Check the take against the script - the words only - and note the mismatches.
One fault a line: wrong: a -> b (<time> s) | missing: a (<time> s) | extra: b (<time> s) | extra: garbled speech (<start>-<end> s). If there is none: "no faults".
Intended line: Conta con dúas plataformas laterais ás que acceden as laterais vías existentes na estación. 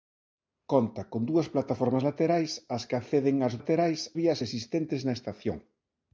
no faults